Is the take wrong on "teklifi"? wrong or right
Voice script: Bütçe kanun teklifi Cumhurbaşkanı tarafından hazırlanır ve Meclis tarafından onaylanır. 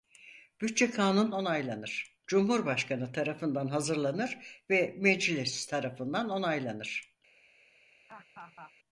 wrong